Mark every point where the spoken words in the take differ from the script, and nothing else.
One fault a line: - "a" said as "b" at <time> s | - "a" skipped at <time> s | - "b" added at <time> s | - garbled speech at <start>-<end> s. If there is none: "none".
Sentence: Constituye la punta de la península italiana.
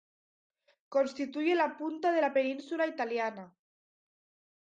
none